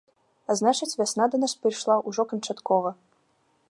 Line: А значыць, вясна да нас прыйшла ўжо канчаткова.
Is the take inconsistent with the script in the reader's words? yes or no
no